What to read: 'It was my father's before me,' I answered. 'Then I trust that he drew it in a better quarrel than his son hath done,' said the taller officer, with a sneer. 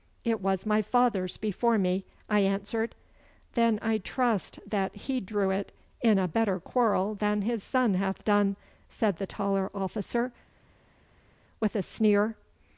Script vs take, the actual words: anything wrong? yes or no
no